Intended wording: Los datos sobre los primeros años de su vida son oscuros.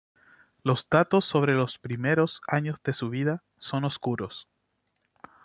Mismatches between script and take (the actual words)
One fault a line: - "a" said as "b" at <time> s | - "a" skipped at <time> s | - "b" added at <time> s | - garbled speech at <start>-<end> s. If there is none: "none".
none